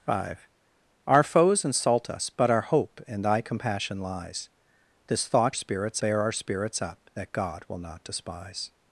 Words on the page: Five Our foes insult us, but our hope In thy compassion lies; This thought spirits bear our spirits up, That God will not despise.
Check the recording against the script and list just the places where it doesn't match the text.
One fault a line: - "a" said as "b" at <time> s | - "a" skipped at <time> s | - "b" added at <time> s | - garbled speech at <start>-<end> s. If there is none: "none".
none